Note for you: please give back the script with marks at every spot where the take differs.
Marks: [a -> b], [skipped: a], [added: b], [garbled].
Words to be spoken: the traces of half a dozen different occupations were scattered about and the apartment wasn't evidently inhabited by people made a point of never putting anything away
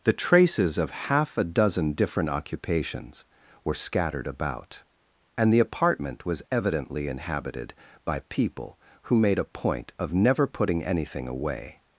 the traces of half a dozen different occupations were scattered about and the apartment [wasn't -> was] evidently inhabited by people [added: who] made a point of never putting anything away